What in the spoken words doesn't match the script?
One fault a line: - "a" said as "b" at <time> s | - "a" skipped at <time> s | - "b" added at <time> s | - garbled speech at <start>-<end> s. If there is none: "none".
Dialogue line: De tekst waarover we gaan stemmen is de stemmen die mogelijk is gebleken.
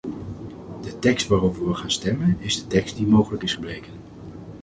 - "stemmen" said as "tekst" at 2.7 s